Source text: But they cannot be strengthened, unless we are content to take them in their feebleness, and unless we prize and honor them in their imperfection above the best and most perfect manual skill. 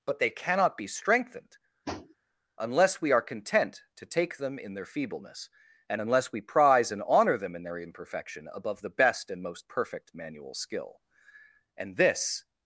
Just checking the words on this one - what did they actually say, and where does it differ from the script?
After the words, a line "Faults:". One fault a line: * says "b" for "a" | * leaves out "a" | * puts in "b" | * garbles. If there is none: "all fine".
But they cannot be strengthened, unless we are content to take them in their feebleness, and unless we prize and honor them in their imperfection above the best and most perfect manual skill. And this
Faults:
* puts in "And this"